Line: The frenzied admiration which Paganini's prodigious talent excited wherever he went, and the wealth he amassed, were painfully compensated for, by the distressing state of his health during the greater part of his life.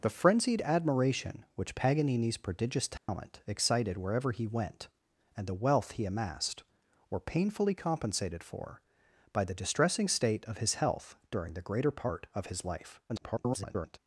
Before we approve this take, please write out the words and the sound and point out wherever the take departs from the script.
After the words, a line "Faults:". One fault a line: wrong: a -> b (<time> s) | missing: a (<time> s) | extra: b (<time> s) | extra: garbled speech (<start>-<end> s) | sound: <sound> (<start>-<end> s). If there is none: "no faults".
The frenzied admiration which Paganini's prodigious talent excited wherever he went, and the wealth he amassed, were painfully compensated for, by the distressing state of his health during the greater part of his life. [garbled]
Faults:
sound: dropout (3.0-3.1 s)
extra: garbled speech (13.1-14.0 s)